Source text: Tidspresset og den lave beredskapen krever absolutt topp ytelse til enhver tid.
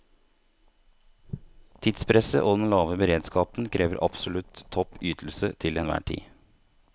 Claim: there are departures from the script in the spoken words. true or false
false